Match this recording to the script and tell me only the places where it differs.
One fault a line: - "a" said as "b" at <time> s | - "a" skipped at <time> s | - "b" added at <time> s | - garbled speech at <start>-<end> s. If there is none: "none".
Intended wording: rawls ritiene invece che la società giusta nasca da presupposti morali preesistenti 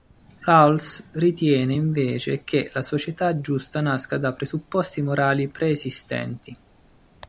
none